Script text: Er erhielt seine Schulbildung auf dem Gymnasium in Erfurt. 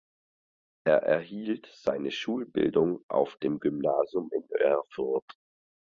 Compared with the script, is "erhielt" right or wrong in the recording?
right